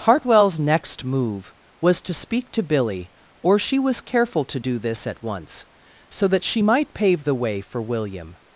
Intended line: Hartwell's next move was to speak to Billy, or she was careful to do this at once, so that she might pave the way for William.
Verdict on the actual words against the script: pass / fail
pass